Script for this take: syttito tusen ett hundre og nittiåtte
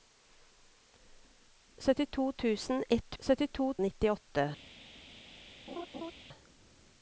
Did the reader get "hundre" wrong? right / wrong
wrong